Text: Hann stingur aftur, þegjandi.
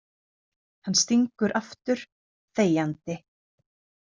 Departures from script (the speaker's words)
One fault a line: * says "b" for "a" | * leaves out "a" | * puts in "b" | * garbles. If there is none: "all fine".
all fine